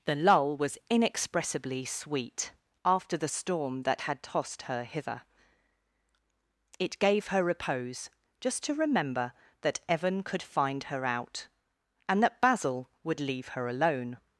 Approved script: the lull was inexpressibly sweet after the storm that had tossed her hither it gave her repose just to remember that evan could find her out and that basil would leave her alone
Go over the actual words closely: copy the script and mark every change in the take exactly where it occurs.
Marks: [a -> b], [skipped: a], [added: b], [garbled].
the lull was inexpressibly sweet after the storm that had tossed her hither it gave her repose just to remember that evan could find her out and that basil would leave her alone